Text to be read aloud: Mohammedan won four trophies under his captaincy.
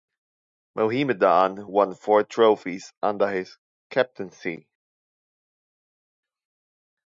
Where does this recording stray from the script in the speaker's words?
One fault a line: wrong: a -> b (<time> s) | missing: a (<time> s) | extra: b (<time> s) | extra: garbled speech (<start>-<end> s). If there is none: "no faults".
no faults